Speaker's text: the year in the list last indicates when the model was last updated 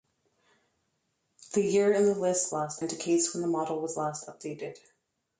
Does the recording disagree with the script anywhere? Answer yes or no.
no